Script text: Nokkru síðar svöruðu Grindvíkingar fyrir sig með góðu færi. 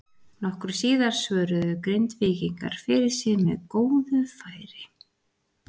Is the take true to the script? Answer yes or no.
yes